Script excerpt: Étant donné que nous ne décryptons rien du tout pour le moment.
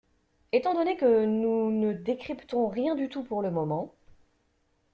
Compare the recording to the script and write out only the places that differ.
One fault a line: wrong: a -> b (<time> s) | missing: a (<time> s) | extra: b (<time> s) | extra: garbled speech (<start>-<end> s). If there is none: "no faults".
no faults